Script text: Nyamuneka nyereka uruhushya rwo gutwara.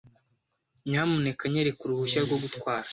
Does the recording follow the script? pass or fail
pass